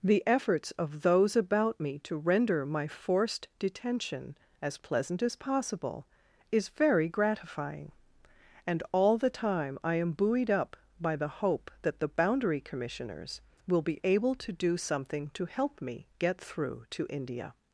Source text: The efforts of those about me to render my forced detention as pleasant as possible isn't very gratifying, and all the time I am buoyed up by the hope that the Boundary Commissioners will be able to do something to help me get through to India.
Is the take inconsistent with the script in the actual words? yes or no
yes